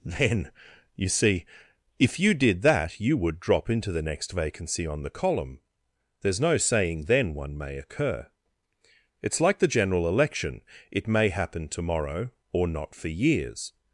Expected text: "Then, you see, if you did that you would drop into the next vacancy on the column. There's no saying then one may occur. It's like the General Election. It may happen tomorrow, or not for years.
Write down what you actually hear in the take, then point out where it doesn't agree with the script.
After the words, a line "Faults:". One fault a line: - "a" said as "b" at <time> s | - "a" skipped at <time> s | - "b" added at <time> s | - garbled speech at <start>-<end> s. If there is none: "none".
"Then, you see, if you did that you would drop into the next vacancy on the column. There's no saying then one may occur. It's like the General Election. It may happen tomorrow, or not for years.
Faults:
none